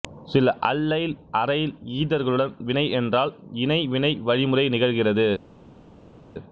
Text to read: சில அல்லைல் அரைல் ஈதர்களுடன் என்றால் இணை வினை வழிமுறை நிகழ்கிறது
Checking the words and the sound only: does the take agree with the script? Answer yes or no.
no